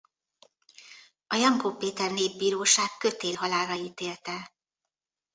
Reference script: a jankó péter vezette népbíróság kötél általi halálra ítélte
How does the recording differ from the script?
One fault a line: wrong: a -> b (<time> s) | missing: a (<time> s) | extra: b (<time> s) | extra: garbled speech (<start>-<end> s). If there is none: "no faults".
missing: vezette (2.1 s)
missing: általi (3.4 s)